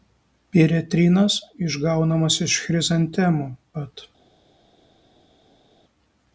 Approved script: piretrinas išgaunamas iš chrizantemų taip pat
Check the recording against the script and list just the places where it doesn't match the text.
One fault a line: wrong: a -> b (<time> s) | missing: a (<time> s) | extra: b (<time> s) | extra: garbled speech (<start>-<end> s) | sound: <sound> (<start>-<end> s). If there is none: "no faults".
missing: taip (3.5 s)